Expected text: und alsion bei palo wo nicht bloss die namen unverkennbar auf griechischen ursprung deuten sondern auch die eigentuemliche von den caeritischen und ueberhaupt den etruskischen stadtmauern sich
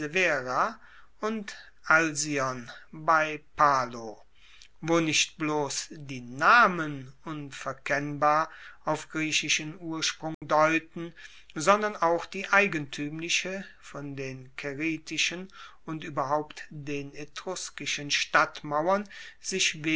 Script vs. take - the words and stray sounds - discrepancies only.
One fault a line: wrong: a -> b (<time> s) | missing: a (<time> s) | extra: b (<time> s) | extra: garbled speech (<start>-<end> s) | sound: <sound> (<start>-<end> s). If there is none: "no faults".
sound: dropout (10.3-10.4 s)